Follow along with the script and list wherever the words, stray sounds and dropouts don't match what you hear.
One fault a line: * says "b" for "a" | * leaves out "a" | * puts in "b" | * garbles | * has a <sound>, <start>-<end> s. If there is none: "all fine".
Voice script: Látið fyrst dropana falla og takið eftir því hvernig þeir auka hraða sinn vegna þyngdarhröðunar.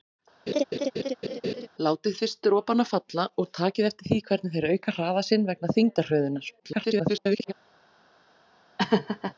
* has a laugh, 0.5-1.7 s
* garbles
* has a laugh, 8.8-9.3 s